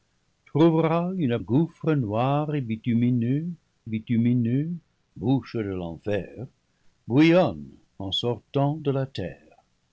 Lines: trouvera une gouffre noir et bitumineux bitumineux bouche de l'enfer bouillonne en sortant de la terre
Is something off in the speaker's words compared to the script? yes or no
no